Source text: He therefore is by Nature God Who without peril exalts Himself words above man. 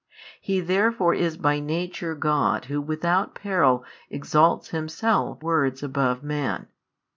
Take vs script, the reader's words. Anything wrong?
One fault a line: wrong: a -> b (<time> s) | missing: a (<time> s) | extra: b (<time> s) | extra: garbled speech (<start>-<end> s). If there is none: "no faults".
no faults